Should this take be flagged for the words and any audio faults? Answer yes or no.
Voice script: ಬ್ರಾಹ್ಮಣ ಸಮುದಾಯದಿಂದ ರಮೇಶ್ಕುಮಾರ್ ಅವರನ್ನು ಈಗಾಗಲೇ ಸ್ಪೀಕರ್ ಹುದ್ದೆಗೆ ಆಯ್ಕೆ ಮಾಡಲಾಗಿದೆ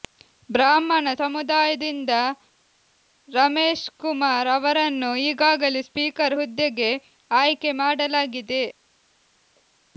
no